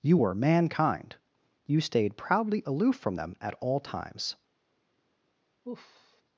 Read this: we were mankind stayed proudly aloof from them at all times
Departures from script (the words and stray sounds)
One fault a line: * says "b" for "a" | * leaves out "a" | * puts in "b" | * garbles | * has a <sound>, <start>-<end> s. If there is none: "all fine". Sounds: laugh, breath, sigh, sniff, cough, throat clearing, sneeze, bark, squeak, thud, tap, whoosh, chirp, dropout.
* says "you" for "we"
* puts in "you"
* has a sigh, 5.6-6.2 s